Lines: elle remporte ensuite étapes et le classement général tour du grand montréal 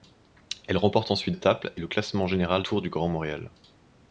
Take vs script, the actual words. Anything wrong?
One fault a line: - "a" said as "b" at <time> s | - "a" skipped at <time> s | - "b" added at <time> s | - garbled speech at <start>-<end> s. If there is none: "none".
none